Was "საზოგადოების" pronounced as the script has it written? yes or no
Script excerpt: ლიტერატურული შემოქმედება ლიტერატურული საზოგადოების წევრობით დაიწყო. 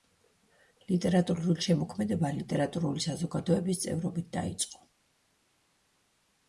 yes